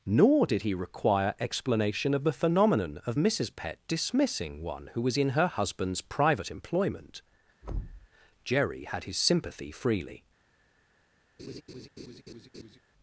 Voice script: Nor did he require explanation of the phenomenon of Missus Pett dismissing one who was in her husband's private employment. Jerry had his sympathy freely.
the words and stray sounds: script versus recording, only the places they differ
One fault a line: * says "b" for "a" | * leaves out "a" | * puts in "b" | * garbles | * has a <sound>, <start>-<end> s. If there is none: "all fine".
* has a thud, 7.6-8.1 s
* has a laugh, 11.4-12.8 s